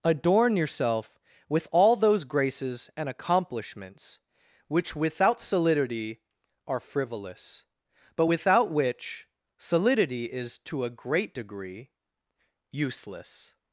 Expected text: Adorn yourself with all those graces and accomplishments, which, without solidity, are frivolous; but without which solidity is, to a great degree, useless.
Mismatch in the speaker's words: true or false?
false